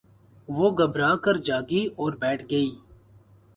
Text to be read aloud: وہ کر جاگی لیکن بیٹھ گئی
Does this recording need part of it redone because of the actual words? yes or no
yes